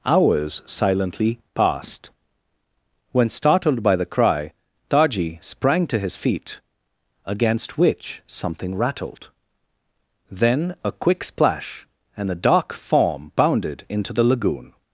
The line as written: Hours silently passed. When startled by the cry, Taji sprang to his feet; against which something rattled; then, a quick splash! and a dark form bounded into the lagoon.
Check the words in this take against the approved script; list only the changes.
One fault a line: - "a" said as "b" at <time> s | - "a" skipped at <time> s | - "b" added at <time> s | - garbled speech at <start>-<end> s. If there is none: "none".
none